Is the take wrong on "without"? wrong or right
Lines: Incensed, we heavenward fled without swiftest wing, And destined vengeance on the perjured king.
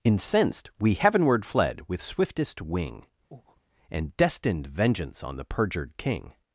wrong